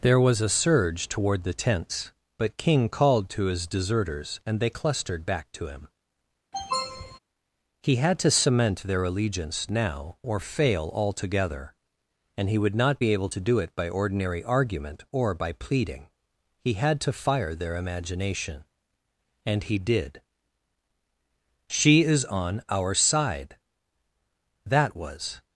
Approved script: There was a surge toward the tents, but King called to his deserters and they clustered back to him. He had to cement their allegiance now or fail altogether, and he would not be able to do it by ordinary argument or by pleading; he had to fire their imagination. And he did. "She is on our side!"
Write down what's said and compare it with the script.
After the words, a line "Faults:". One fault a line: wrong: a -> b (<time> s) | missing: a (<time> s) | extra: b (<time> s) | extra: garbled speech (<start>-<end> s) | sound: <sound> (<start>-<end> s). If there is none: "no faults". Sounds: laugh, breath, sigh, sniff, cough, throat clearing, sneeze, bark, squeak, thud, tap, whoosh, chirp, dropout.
There was a surge toward the tents, but King called to his deserters and they clustered back to him. He had to cement their allegiance now or fail altogether, and he would not be able to do it by ordinary argument or by pleading; he had to fire their imagination. And he did. "She is on our side!" That was
Faults:
sound: sniff (6.5-7.2 s)
extra: That was (24.7 s)